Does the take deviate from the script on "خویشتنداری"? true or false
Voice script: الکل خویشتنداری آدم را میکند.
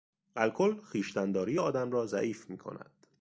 false